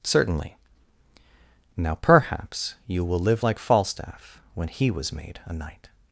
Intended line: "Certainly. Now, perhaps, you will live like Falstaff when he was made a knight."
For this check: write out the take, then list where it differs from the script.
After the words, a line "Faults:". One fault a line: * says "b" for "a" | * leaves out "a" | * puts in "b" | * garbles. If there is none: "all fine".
"Certainly. Now, perhaps, you will live like Falstaff when he was made a knight."
Faults:
all fine